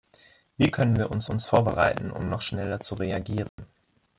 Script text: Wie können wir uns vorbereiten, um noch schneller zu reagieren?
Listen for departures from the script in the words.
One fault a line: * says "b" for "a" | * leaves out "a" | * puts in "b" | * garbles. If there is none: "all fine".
* puts in "uns"